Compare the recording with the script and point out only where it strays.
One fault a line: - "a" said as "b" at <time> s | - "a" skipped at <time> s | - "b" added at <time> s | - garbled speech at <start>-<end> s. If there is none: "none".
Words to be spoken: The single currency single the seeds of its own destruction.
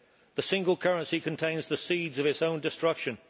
- "single" said as "contains" at 1.2 s